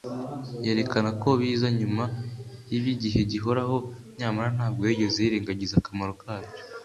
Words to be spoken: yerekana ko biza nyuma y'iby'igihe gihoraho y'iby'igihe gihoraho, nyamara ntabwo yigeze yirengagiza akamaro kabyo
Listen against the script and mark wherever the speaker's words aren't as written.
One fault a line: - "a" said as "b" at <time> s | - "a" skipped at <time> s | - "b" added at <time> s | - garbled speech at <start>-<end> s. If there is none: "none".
- "y'iby'igihe gihoraho" skipped at 3.8 s